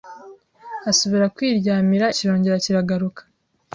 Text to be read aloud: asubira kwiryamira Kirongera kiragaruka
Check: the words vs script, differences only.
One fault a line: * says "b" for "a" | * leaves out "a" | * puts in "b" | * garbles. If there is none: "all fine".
all fine